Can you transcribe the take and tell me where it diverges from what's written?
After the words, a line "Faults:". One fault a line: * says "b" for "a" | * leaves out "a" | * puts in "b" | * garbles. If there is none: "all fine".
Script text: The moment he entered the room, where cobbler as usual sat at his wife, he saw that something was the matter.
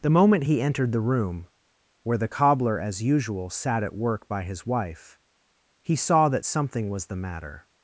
The moment he entered the room, where the cobbler as usual sat at work by his wife, he saw that something was the matter.
Faults:
* puts in "the"
* puts in "work by"